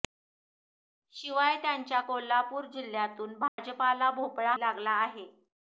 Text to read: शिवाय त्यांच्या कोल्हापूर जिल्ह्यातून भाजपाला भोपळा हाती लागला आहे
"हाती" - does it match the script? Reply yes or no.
no